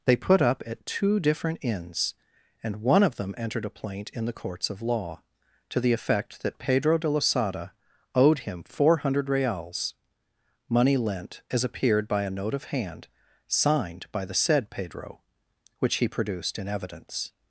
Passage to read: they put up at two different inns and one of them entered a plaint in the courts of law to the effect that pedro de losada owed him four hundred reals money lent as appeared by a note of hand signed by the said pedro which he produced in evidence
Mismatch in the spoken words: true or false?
false